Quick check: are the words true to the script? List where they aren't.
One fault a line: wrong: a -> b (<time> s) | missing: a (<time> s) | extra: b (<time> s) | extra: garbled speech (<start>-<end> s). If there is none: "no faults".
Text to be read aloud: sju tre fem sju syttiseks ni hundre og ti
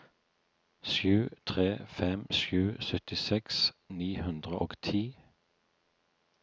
no faults